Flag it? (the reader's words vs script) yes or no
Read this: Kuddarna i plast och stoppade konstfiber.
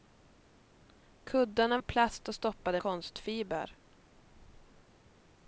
no